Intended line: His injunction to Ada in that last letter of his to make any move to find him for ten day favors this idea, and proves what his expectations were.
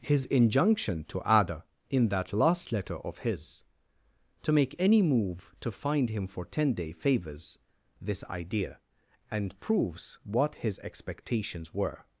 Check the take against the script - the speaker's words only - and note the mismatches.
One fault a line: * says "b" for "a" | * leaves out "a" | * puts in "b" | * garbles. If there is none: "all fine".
all fine